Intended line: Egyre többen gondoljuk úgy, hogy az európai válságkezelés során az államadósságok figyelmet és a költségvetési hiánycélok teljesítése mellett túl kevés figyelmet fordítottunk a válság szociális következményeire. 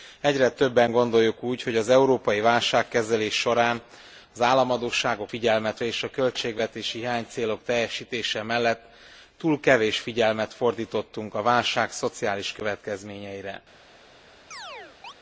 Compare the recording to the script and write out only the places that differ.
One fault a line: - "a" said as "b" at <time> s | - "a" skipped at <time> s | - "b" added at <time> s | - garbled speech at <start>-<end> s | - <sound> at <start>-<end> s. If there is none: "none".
- chirp at 14.5-15.1 s